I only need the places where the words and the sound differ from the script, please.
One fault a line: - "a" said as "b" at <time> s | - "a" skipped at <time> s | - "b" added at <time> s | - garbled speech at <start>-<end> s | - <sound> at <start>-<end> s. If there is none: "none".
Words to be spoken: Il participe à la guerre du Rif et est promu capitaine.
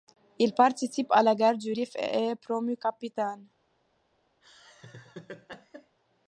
- laugh at 4.4-6.0 s